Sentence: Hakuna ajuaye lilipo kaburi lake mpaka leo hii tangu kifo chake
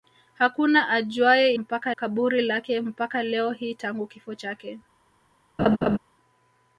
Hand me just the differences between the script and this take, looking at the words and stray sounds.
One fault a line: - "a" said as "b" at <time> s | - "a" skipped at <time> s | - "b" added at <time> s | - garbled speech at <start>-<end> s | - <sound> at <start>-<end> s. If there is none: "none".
- "lilipo" said as "mpaka" at 1.5 s
- laugh at 5.6-6.0 s